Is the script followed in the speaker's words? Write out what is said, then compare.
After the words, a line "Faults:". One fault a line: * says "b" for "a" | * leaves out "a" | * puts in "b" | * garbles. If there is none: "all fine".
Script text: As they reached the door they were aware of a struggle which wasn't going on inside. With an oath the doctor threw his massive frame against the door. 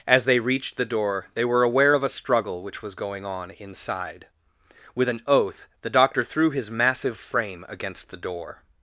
As they reached the door they were aware of a struggle which was going on inside. With an oath the doctor threw his massive frame against the door.
Faults:
* says "was" for "wasn't"